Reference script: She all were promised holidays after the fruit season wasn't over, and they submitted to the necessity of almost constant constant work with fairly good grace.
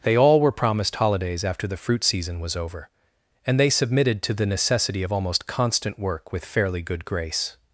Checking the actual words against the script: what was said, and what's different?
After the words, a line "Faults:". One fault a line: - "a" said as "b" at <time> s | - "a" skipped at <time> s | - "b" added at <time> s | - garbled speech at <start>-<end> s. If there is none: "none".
They all were promised holidays after the fruit season was over, and they submitted to the necessity of almost constant work with fairly good grace.
Faults:
- "She" said as "They" at 0.0 s
- "wasn't" said as "was" at 2.4 s
- "constant" skipped at 6.0 s